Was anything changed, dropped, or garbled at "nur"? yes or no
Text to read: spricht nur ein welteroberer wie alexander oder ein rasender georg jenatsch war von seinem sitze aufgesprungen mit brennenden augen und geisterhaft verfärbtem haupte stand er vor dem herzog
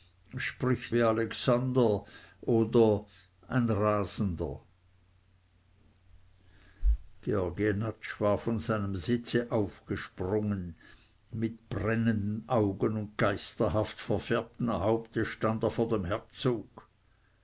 yes